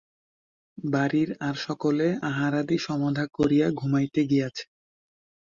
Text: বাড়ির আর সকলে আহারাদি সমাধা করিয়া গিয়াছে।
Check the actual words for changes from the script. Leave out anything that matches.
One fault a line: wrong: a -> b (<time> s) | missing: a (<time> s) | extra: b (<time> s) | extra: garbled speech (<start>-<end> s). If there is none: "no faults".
extra: ঘুমাইতে (3.8 s)